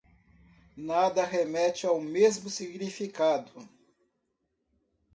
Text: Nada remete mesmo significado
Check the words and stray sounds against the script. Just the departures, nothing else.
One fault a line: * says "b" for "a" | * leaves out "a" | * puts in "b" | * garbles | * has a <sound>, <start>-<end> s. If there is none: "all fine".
* puts in "ao"